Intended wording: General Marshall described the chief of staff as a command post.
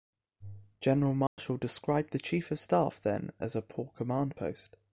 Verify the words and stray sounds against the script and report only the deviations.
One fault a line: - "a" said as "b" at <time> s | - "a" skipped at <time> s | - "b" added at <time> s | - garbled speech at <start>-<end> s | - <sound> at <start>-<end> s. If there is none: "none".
- dropout at 1.3-1.4 s
- "then" added at 3.0 s
- "poor" added at 3.6 s